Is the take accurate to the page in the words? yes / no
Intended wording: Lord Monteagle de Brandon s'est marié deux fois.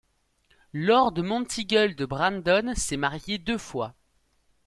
yes